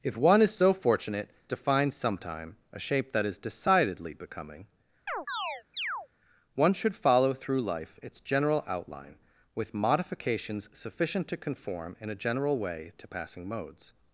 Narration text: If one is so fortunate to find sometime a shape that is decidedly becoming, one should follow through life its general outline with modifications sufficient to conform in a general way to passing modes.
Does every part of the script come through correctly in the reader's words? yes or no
yes